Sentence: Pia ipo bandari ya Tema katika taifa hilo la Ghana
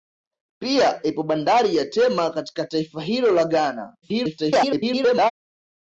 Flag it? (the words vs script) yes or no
yes